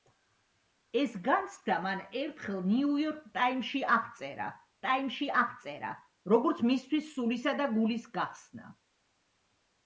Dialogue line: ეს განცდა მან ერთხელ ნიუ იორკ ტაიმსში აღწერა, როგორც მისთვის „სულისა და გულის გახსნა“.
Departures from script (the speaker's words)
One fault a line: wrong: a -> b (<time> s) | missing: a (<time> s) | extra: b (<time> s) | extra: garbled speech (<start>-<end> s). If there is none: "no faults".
extra: ტაიმსში აღწერა (4.9 s)